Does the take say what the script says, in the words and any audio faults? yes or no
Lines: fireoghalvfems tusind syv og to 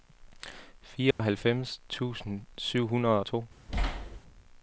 no